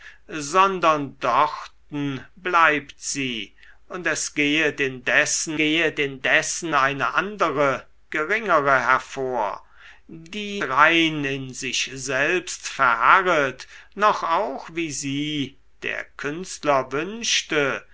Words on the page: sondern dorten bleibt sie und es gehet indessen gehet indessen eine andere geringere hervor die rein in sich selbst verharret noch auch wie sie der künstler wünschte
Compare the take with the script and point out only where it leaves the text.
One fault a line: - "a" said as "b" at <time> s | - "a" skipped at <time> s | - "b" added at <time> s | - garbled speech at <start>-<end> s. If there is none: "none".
none